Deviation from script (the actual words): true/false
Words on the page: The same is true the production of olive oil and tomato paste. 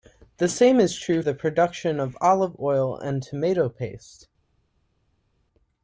false